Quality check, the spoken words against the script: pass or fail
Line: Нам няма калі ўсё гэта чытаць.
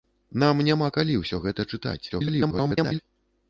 fail